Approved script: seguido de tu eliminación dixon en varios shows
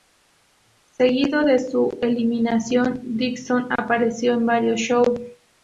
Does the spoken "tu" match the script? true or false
false